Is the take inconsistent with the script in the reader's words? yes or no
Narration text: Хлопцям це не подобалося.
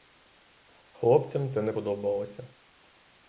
no